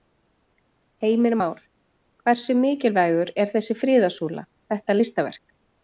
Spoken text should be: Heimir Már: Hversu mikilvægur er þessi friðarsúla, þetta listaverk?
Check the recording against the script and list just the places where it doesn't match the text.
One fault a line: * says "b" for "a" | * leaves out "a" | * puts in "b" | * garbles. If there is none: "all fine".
all fine